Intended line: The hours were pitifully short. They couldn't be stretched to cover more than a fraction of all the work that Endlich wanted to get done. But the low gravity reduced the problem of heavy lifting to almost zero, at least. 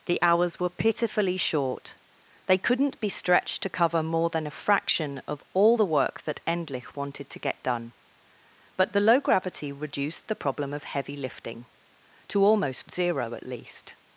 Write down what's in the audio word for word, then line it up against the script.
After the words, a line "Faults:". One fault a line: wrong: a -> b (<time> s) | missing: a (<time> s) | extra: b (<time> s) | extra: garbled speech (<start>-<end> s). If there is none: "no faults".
The hours were pitifully short. They couldn't be stretched to cover more than a fraction of all the work that Endlich wanted to get done. But the low gravity reduced the problem of heavy lifting to almost zero, at least.
Faults:
no faults